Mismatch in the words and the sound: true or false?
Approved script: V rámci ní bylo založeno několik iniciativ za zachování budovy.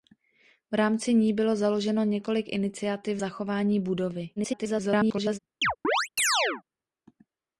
true